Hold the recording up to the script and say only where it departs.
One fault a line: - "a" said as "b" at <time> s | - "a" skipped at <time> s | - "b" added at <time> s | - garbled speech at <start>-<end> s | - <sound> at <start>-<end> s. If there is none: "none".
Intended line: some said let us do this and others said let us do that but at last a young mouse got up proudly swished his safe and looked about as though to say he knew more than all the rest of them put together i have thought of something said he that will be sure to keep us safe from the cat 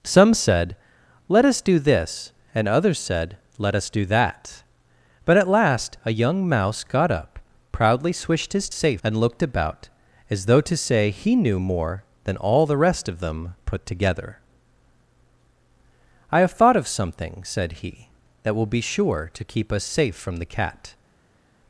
none